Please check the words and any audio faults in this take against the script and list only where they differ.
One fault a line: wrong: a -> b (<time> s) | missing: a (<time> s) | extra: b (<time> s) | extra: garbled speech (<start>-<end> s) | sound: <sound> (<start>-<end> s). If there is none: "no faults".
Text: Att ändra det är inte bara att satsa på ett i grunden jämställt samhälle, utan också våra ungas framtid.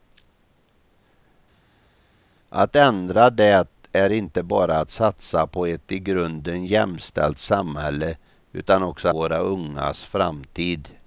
no faults